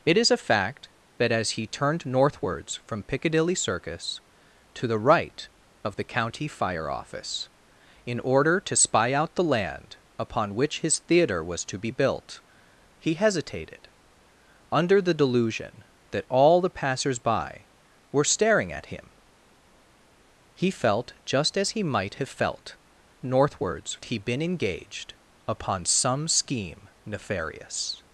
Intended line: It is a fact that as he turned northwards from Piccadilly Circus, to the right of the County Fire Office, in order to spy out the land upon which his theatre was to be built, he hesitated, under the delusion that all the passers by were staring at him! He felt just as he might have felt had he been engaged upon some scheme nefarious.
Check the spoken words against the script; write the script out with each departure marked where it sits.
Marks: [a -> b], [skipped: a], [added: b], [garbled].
It is a fact that as he turned northwards from Piccadilly Circus, to the right of the County Fire Office, in order to spy out the land upon which his theatre was to be built, he hesitated, under the delusion that all the passers by were staring at him! He felt just as he might have felt [had -> northwards] he been engaged upon some scheme nefarious.